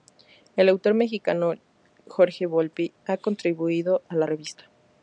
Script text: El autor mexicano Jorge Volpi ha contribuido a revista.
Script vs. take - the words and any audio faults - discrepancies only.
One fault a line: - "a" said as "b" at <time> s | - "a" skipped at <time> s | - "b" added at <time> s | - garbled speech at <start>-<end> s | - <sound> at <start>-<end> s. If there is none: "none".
- "la" added at 4.1 s